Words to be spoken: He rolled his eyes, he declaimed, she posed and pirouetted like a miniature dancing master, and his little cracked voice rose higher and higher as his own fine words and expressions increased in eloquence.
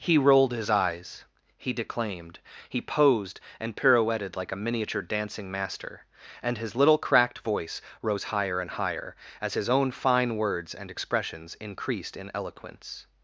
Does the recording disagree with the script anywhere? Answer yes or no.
yes